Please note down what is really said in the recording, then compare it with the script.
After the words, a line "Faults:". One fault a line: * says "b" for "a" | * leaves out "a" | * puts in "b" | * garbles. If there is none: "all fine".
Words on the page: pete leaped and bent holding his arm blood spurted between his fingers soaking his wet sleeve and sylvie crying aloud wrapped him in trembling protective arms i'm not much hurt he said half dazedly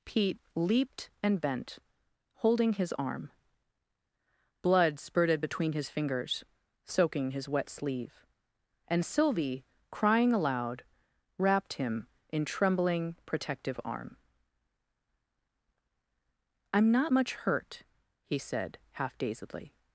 pete leaped and bent holding his arm blood spurted between his fingers soaking his wet sleeve and sylvie crying aloud wrapped him in trembling protective arm i'm not much hurt he said half dazedly
Faults:
* says "arm" for "arms"